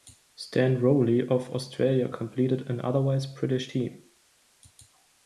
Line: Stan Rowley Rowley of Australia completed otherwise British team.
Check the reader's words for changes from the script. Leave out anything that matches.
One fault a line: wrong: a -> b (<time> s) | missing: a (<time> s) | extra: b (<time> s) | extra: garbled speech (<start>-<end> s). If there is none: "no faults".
missing: Rowley (1.3 s)
extra: an (2.7 s)